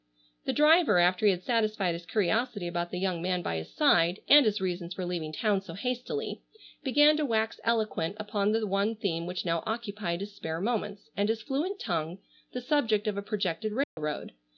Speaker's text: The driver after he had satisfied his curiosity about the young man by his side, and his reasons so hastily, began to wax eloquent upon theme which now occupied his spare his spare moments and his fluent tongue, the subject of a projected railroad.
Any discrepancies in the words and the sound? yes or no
yes